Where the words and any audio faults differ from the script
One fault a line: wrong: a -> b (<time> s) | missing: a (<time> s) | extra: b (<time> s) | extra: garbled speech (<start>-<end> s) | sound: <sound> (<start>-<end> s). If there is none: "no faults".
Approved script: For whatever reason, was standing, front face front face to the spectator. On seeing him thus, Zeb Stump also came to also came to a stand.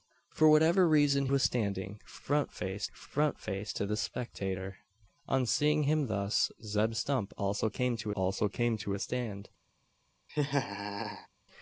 sound: laugh (10.3-11.3 s)